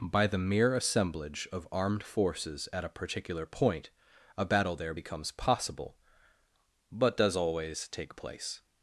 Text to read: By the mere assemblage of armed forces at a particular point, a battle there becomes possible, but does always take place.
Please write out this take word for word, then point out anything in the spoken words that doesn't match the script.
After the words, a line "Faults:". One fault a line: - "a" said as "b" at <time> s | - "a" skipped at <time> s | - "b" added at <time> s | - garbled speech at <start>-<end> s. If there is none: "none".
By the mere assemblage of armed forces at a particular point, a battle there becomes possible, but does always take place.
Faults:
none